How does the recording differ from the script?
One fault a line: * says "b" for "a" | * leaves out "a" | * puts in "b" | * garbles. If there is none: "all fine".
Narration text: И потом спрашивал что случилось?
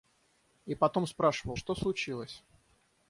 all fine